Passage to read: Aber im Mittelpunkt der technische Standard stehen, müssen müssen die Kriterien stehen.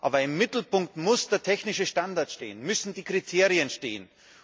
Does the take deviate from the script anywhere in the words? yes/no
yes